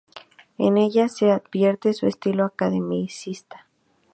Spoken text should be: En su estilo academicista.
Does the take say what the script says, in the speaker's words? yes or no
no